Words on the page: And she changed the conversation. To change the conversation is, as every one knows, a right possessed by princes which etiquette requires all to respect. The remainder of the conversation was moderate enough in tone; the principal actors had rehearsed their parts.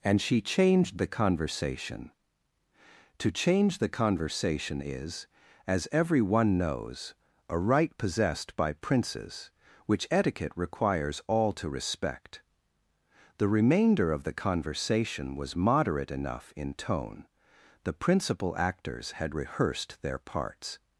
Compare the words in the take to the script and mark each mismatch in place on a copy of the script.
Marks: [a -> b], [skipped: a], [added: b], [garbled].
And she changed the conversation. To change the conversation is, as every one knows, a right possessed by princes which etiquette requires all to respect. The remainder of the conversation was moderate enough in tone; the principal actors had rehearsed their parts.